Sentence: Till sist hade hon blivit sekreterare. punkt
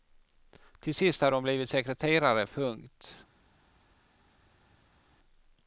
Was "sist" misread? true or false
false